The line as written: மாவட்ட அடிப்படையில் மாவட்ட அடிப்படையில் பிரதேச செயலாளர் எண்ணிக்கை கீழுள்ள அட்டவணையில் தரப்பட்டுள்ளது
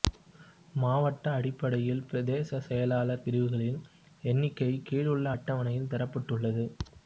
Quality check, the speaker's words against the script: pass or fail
fail